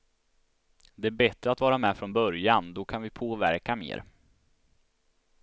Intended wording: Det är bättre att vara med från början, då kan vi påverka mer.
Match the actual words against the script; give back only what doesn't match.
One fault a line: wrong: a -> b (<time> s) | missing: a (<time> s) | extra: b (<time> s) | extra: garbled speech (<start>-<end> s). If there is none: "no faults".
no faults